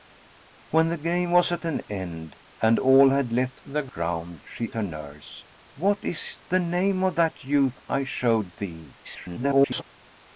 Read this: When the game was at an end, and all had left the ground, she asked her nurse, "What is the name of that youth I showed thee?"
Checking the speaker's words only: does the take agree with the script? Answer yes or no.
no